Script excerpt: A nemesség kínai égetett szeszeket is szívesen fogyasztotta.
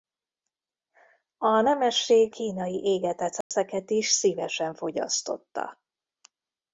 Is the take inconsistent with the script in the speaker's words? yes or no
no